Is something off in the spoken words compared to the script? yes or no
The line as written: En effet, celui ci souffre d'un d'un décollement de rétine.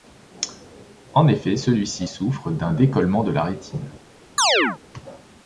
yes